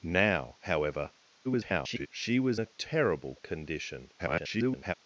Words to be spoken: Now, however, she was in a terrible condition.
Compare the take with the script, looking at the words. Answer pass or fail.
fail